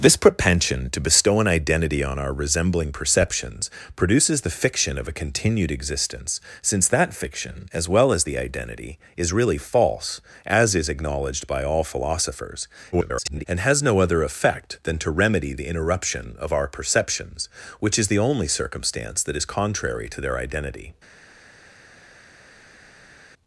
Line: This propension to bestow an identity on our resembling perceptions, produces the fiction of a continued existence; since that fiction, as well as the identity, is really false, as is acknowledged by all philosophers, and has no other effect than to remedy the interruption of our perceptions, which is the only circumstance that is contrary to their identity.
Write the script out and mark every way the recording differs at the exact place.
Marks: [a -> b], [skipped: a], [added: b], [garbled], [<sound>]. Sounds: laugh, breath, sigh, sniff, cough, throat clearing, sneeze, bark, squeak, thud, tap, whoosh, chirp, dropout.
This propension to bestow an identity on our resembling perceptions, produces the fiction of a continued existence; since that fiction, as well as the identity, is really false, as is acknowledged by all philosophers, [garbled] and has no other effect than to remedy the interruption of our perceptions, which is the only circumstance that is contrary to their identity.